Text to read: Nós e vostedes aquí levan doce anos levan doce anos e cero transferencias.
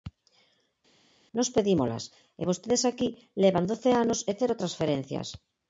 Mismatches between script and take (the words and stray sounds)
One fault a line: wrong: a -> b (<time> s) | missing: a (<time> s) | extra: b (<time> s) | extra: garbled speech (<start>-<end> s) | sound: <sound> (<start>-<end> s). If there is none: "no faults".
extra: pedímolas (1.5 s)
missing: levan doce anos (4.2 s)